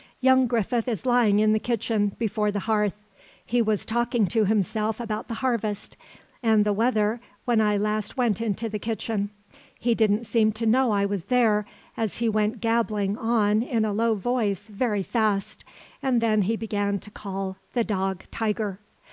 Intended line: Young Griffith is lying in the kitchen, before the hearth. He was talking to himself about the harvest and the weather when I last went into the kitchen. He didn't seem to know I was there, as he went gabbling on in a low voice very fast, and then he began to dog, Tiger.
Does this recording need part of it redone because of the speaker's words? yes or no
yes